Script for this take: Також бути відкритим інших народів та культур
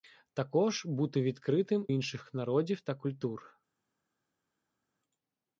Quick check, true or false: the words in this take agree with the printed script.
true